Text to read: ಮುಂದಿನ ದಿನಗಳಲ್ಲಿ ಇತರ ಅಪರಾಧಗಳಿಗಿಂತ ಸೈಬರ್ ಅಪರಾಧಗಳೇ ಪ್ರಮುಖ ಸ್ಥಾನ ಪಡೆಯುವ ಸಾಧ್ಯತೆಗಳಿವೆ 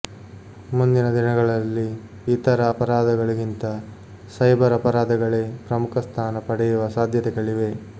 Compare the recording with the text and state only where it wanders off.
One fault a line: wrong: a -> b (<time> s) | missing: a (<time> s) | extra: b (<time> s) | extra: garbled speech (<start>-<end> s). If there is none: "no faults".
no faults